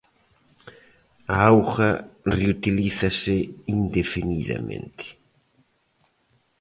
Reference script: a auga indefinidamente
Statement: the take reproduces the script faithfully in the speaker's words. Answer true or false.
false